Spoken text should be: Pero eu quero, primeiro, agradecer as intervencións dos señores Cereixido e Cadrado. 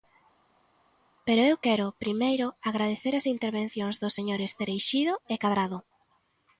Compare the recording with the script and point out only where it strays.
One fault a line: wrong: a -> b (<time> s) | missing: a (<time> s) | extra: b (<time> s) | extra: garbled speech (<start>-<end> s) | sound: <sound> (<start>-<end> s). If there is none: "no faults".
no faults